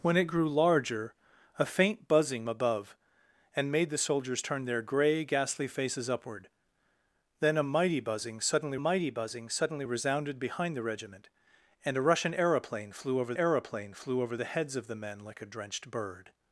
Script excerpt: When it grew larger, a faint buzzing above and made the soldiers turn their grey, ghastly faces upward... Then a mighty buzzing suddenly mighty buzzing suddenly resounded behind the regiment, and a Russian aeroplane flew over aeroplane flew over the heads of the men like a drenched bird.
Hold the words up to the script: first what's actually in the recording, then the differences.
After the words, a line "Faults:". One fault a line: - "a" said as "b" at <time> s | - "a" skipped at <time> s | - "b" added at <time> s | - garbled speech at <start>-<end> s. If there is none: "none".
When it grew larger, a faint buzzing above and made the soldiers turn their grey, ghastly faces upward... Then a mighty buzzing suddenly mighty buzzing suddenly resounded behind the regiment, and a Russian aeroplane flew over aeroplane flew over the heads of the men like a drenched bird.
Faults:
none